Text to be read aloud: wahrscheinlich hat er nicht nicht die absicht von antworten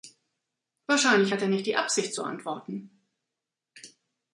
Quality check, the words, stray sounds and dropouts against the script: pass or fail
fail